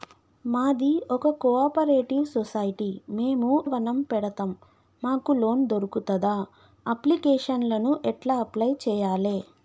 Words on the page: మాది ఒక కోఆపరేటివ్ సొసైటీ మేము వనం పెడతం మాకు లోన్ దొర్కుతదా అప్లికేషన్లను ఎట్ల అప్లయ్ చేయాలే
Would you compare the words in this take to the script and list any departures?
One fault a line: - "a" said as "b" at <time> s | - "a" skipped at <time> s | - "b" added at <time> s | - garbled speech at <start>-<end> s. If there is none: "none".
none